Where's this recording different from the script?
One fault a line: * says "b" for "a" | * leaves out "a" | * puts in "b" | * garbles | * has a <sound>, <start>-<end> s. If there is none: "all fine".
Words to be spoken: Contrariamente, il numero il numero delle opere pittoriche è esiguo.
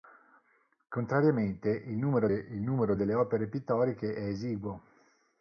all fine